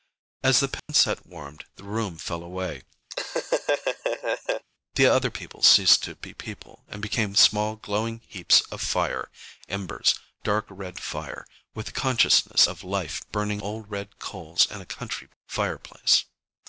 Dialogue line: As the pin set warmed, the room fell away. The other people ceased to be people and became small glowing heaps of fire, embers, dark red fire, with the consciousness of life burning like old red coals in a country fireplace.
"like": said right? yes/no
no